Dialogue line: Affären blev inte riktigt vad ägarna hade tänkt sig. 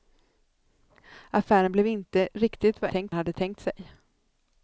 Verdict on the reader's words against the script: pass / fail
fail